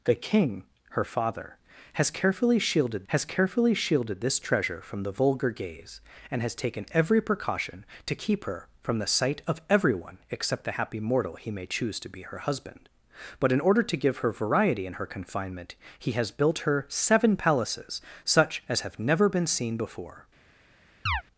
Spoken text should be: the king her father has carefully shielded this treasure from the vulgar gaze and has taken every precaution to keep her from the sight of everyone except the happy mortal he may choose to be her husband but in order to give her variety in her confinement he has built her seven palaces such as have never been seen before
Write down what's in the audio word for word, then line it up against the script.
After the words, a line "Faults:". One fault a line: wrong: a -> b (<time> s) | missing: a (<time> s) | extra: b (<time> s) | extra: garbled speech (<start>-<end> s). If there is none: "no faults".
the king her father has carefully shielded has carefully shielded this treasure from the vulgar gaze and has taken every precaution to keep her from the sight of everyone except the happy mortal he may choose to be her husband but in order to give her variety in her confinement he has built her seven palaces such as have never been seen before
Faults:
extra: has carefully shielded (3.1 s)